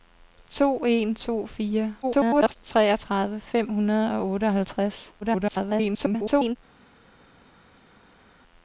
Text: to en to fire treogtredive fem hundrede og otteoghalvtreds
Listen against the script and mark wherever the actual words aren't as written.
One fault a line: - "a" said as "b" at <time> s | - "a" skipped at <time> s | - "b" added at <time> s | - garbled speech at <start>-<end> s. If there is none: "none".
- garbled speech at 2.0-2.6 s
- garbled speech at 5.2-6.6 s